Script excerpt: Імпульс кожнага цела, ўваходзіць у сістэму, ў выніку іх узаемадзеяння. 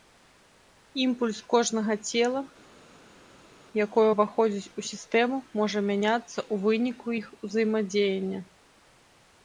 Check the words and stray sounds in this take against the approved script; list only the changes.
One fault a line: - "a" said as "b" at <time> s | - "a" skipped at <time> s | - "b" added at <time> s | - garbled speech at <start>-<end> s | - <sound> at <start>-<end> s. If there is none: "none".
- "якое" added at 3.8 s
- "можа мяняцца" added at 5.6 s